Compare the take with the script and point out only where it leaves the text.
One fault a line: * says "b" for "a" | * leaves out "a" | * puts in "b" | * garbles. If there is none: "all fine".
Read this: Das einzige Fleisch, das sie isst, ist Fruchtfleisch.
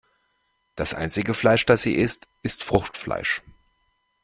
all fine